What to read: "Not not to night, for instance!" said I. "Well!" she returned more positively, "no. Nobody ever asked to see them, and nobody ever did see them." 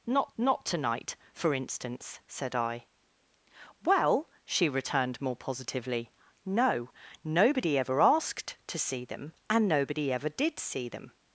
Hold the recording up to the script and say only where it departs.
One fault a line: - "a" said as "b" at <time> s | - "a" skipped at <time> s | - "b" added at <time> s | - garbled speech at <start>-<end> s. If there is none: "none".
none